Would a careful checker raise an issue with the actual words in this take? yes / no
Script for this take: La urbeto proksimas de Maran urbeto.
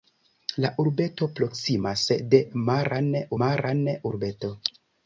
yes